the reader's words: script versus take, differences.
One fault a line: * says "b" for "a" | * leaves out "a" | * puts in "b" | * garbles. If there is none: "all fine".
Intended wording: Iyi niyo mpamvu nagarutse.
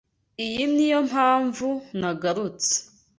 all fine